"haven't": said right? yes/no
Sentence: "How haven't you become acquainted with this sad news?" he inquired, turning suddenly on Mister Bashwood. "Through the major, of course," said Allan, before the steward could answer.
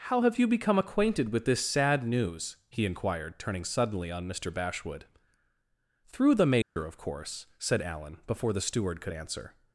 no